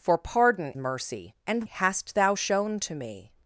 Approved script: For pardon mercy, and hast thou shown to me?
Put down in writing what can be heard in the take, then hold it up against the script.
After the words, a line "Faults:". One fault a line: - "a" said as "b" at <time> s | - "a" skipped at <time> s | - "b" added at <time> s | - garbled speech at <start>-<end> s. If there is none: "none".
For pardon mercy, and hast thou shown to me?
Faults:
none